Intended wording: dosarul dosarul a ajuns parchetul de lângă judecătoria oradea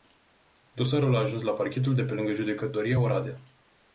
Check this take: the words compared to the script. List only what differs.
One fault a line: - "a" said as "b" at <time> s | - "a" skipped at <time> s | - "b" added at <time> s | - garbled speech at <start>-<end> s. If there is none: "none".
- "dosarul" skipped at 1.1 s
- "la" added at 1.4 s
- "pe" added at 2.0 s